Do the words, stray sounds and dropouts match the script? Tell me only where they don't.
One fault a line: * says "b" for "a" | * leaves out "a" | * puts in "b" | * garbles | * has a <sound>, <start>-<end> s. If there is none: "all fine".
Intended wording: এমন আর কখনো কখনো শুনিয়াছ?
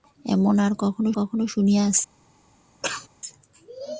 * has a cough, 2.8-3.1 s